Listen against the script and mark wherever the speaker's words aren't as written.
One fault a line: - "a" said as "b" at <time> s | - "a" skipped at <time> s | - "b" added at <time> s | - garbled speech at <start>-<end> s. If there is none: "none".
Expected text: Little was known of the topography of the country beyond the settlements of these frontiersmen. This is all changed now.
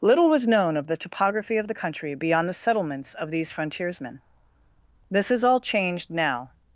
none